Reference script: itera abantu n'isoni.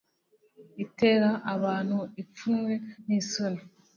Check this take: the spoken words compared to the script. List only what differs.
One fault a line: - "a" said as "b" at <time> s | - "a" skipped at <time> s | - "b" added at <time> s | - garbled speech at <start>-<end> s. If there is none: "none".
- "ipfunwe" added at 2.2 s